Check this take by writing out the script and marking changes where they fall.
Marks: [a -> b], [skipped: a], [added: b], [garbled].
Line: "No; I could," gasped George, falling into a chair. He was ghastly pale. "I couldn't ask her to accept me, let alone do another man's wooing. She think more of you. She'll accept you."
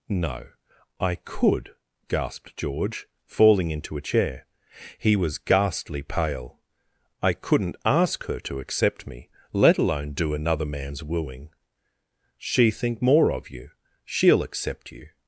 "No; I could," gasped George, falling into a chair. He was ghastly pale. "I couldn't ask her to accept me, let alone do another man's wooing. She think more of you. She'll accept you."